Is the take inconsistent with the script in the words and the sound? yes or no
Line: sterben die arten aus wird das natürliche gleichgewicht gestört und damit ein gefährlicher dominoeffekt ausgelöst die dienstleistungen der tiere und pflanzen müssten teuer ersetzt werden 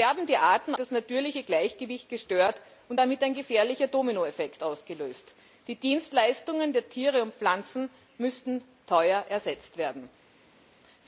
yes